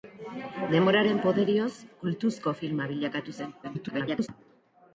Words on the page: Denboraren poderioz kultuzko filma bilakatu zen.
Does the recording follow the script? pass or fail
fail